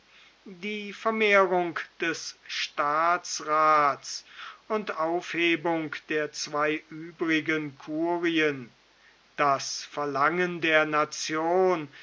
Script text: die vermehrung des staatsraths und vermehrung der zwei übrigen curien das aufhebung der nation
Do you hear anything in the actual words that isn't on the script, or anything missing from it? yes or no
yes